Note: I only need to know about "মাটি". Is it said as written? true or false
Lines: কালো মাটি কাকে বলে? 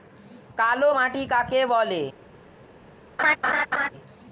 true